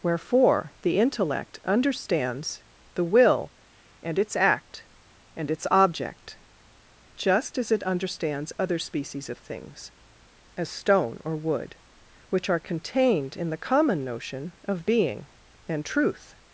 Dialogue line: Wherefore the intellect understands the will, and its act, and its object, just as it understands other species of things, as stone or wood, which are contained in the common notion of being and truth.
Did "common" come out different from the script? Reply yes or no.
no